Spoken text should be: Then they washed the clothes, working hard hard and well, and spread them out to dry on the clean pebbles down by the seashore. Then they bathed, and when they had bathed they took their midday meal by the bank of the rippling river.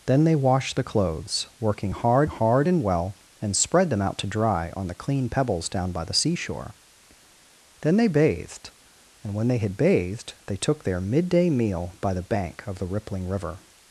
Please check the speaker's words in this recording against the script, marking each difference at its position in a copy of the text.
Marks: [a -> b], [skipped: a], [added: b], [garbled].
Then they washed the clothes, working hard hard and well, and spread them out to dry on the clean pebbles down by the seashore. Then they bathed, and when they had bathed they took their midday meal by the bank of the rippling river.